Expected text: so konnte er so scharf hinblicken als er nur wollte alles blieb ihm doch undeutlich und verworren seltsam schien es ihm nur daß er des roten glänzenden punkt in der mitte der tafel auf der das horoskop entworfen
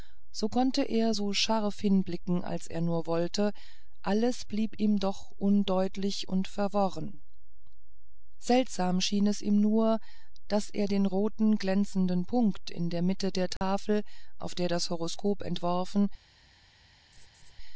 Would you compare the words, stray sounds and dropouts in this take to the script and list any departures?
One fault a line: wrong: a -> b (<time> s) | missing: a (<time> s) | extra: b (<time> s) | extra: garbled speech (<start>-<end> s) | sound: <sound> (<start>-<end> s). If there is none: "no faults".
wrong: des -> den (10.9 s)
sound: dropout (13.6-13.6 s)
sound: laugh (17.1-17.5 s)